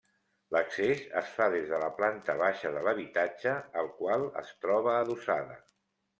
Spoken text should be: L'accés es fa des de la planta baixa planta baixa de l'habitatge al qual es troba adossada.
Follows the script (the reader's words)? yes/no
no